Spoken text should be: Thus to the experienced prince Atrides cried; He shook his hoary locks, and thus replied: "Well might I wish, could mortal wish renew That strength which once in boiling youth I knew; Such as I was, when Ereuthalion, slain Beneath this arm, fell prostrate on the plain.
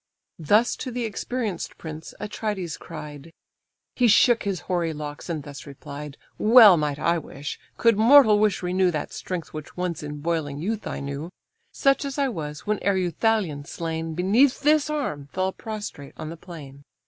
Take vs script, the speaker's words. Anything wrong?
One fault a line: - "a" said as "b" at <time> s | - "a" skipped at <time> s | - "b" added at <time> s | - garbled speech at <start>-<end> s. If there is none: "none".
none